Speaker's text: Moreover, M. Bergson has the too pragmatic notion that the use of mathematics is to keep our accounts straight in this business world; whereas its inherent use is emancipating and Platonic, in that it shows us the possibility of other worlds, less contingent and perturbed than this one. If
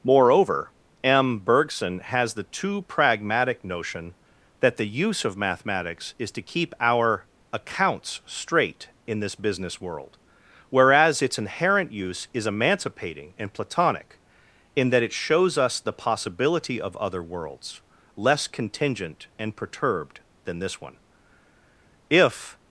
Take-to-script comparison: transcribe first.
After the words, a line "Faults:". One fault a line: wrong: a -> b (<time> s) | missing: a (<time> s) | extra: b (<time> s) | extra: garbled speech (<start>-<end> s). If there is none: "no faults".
Moreover, M. Bergson has the too pragmatic notion that the use of mathematics is to keep our accounts straight in this business world; whereas its inherent use is emancipating and Platonic, in that it shows us the possibility of other worlds, less contingent and perturbed than this one. If
Faults:
no faults